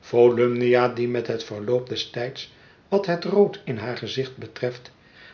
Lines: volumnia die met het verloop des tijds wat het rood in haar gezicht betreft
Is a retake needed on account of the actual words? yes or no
no